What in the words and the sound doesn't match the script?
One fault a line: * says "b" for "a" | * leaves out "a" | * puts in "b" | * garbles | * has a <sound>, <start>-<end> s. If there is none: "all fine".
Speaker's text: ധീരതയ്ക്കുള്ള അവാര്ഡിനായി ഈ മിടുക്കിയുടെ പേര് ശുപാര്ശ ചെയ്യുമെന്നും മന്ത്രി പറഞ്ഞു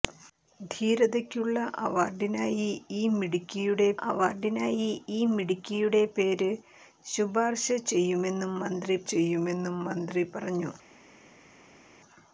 * puts in "അവാര്ഡിനായി ഈ മിടുക്കിയുടെ"
* puts in "ചെയ്യുമെന്നും മന്ത്രി"